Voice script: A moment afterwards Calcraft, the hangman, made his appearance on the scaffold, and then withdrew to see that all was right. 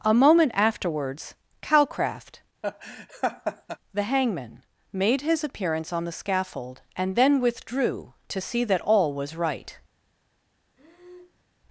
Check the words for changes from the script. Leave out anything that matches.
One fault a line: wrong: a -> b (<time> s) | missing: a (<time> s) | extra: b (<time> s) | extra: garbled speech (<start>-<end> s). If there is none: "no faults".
no faults